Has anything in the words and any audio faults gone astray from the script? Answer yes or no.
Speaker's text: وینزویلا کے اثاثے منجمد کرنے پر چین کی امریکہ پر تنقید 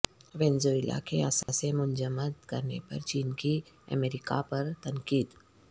yes